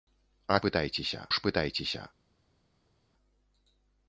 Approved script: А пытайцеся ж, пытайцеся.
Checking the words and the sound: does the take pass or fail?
pass